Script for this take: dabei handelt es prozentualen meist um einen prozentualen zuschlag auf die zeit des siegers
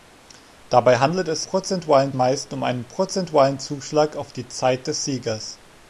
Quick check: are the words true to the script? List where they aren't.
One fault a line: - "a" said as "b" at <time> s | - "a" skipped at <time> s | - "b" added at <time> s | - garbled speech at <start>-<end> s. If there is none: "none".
none